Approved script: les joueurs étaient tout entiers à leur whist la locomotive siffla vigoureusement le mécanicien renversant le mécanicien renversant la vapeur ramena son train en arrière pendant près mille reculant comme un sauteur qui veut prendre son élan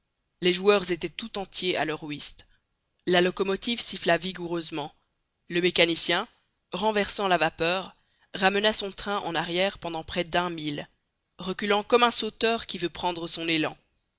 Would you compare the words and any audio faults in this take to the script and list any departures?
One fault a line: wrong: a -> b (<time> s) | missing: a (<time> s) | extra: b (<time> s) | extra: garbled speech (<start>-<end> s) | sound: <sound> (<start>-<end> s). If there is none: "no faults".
missing: le mécanicien renversant (7.3 s)
extra: d'un (10.2 s)